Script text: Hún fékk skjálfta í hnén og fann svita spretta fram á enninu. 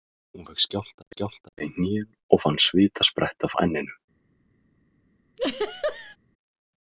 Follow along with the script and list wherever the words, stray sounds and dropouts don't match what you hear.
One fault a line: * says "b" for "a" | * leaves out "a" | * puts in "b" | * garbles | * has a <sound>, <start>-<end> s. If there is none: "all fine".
* puts in "skjálfta"
* leaves out "fram"
* has a laugh, 5.4-6.2 s